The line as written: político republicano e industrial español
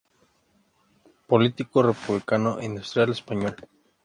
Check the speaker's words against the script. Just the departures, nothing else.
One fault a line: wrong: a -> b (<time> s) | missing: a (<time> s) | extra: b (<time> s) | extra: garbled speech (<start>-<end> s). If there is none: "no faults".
no faults